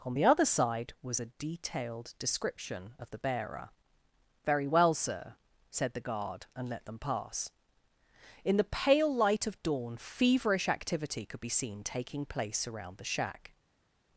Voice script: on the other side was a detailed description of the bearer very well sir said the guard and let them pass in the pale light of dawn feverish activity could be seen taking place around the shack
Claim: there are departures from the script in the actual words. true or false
false